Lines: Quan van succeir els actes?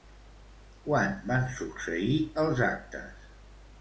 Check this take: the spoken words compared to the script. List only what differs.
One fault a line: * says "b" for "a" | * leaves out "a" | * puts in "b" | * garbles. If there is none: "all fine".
all fine